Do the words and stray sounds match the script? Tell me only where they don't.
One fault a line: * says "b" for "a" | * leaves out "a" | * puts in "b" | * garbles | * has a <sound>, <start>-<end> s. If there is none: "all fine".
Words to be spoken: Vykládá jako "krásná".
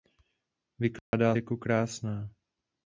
* has a dropout, 1.0-1.1 s